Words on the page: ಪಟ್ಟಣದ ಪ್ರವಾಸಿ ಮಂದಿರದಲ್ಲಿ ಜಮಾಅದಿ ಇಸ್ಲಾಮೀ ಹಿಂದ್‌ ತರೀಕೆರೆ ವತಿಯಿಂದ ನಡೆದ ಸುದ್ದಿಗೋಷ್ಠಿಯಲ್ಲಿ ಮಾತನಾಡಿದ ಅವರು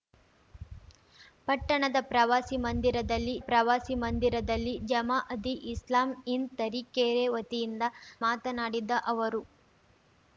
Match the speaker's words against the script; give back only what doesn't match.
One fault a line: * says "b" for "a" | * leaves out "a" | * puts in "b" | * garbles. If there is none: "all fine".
* puts in "ಪ್ರವಾಸಿ ಮಂದಿರದಲ್ಲಿ"
* leaves out "ನಡೆದ ಸುದ್ದಿಗೋಷ್ಠಿಯಲ್ಲಿ"